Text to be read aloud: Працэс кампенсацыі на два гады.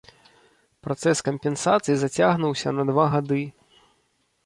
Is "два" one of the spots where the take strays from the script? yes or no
no